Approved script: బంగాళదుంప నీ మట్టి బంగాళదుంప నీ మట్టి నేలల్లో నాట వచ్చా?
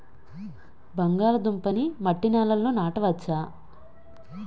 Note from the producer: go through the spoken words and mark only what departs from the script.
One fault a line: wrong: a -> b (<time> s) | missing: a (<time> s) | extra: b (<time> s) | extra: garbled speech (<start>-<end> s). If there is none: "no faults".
missing: బంగాళదుంప నీ మట్టి (2.3 s)